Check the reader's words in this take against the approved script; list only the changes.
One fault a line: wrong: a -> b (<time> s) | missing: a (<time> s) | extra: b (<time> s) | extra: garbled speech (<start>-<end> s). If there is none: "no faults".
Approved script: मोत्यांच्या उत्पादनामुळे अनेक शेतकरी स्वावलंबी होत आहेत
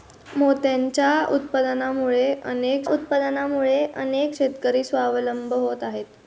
extra: उत्पादनामुळे अनेक (2.9 s)